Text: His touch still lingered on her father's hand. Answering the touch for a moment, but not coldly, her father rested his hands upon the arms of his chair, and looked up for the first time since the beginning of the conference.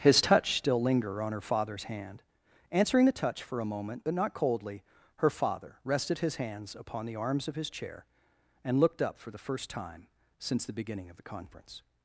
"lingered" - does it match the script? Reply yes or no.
no